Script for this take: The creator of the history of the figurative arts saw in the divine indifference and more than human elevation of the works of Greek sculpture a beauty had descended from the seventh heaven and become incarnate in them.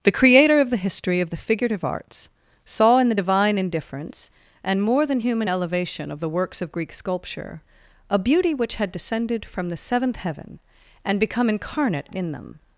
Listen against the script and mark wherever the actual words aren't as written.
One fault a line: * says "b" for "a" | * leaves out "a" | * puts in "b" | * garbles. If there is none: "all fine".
* puts in "which"